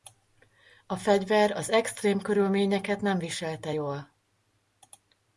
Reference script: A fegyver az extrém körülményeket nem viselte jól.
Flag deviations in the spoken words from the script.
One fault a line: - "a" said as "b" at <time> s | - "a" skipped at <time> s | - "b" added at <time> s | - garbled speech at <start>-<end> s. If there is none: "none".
none